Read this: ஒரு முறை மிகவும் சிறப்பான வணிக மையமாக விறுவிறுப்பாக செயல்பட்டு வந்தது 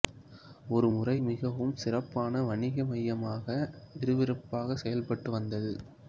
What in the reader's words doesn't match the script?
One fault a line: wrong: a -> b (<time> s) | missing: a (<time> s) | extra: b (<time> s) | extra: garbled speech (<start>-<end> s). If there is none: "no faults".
no faults